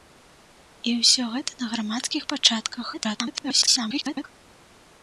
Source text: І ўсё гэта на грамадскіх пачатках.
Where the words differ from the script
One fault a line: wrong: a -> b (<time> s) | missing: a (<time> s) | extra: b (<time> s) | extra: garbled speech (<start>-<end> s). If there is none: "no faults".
extra: garbled speech (2.9-4.2 s)